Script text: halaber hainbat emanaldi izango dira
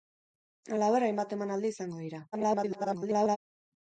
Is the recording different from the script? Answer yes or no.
yes